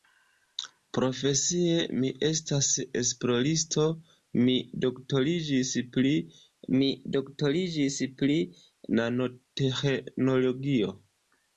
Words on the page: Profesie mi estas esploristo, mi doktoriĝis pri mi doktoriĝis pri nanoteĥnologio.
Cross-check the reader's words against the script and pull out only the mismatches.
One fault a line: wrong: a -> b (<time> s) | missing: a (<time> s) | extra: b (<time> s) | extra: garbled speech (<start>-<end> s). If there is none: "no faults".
no faults